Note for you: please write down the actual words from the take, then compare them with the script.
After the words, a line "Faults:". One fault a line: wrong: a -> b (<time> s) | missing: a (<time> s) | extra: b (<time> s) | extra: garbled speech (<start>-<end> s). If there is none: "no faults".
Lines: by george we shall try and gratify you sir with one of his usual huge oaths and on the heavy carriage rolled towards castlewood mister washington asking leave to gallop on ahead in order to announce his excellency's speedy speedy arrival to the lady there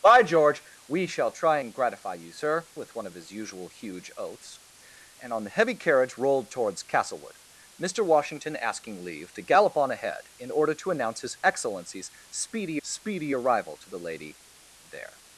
by george we shall try and gratify you sir with one of his usual huge oaths and on the heavy carriage rolled towards castlewood mister washington asking leave to gallop on ahead in order to announce his excellency's speedy speedy arrival to the lady there
Faults:
no faults